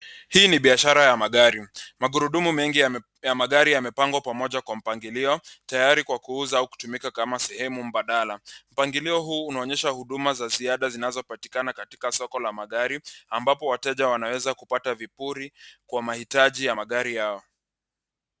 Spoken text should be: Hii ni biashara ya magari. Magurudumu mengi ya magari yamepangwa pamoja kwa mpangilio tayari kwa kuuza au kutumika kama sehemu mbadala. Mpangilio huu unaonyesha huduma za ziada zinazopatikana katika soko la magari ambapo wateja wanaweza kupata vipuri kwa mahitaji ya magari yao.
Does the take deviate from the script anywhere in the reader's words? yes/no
no